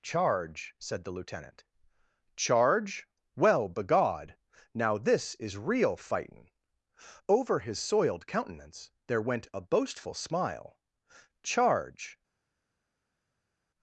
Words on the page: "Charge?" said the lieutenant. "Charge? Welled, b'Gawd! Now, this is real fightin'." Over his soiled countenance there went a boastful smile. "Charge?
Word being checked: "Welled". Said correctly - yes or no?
no